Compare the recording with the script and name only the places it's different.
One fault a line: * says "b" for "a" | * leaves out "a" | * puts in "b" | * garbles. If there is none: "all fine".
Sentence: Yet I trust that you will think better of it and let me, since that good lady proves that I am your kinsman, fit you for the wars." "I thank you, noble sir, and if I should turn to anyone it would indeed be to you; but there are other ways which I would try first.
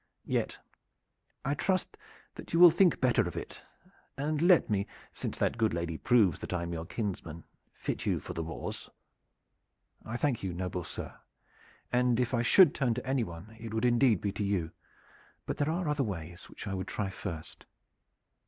all fine